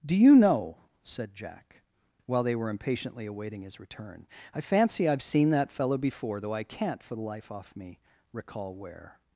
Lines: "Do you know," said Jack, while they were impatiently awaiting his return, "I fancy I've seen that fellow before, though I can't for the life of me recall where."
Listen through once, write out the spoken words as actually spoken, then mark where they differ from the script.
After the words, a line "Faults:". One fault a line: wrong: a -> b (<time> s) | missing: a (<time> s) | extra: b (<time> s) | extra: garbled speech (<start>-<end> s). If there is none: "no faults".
"Do you know," said Jack, while they were impatiently awaiting his return, "I fancy I've seen that fellow before, though I can't for the life off me recall where."
Faults:
wrong: of -> off (7.5 s)